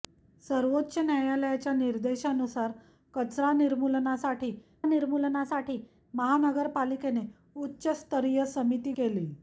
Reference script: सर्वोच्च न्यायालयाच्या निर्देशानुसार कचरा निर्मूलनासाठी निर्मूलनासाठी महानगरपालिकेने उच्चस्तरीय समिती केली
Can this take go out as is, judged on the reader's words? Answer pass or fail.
pass